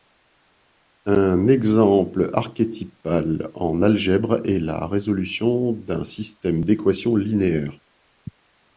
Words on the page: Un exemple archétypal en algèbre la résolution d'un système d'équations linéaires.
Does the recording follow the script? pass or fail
fail